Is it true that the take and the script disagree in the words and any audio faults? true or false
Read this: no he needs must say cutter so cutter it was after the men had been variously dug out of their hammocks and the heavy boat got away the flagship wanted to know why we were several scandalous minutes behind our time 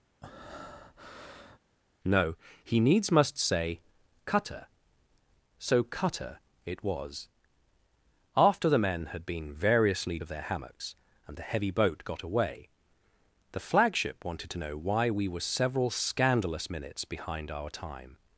true